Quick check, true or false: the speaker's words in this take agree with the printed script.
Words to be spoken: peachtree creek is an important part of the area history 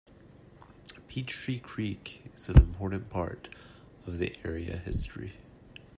true